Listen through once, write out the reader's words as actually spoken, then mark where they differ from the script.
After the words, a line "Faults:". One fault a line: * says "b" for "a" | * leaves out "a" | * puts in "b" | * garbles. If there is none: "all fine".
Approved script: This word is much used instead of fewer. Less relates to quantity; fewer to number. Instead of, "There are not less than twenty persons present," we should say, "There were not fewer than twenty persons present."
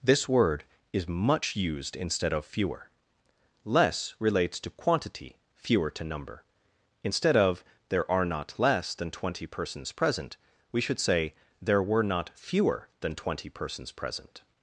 This word is much used instead of fewer. Less relates to quantity; fewer to number. Instead of, "There are not less than twenty persons present," we should say, "There were not fewer than twenty persons present."
Faults:
all fine